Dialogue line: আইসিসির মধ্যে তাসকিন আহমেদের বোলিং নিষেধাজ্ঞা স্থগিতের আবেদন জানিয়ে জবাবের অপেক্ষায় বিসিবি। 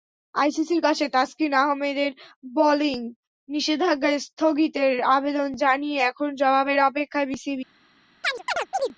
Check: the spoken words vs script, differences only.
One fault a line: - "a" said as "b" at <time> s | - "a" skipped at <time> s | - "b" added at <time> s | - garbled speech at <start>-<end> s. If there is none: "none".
- "মধ্যে" said as "কাছে" at 0.8 s
- "এখন" added at 6.1 s